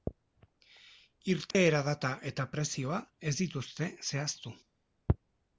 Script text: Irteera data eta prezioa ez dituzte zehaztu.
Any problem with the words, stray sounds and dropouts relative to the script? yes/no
yes